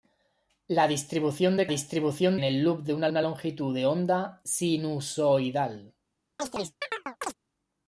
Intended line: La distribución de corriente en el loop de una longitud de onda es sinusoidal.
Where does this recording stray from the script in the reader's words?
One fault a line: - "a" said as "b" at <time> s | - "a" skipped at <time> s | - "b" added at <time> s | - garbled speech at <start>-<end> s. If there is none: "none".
- "corriente" said as "distribución" at 1.7 s
- "una" added at 3.1 s
- "es" skipped at 4.4 s